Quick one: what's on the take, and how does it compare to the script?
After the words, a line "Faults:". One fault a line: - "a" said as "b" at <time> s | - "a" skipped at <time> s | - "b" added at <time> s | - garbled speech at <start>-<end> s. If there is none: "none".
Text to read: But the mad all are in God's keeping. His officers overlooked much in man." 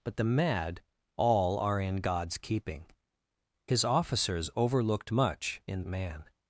But the mad all are in God's keeping. His officers overlooked much in man."
Faults:
none